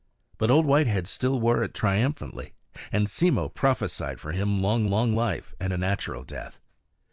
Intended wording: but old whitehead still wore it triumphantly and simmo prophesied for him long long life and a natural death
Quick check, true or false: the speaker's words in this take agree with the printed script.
true